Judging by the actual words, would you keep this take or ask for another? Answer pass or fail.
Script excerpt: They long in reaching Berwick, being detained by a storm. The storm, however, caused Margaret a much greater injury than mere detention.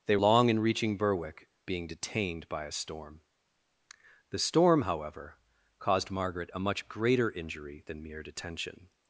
pass